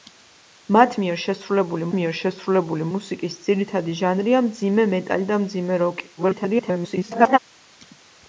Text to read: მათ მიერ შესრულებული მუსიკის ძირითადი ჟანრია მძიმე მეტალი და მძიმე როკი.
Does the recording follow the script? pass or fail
fail